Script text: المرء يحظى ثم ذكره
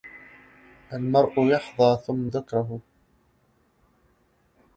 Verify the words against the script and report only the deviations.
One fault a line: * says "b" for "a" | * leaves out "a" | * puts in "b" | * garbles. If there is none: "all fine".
all fine